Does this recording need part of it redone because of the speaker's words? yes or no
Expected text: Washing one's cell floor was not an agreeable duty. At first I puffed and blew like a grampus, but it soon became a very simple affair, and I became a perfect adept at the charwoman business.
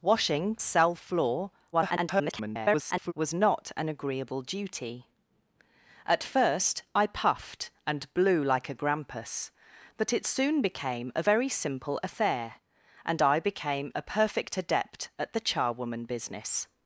yes